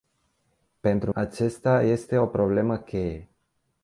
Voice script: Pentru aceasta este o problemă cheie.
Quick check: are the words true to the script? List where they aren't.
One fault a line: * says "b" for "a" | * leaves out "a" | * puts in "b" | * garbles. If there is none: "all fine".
all fine